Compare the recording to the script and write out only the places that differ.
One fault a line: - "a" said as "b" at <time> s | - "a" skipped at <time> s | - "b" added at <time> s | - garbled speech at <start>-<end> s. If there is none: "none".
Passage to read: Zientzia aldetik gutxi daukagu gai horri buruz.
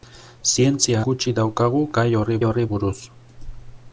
- "aldetik" skipped at 1.0 s
- "horri" added at 2.5 s